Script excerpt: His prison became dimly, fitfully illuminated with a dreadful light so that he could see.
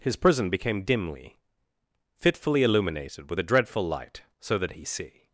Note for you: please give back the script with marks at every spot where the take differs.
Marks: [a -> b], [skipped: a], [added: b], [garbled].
His prison became dimly, fitfully illuminated with a dreadful light so that he [skipped: could] see.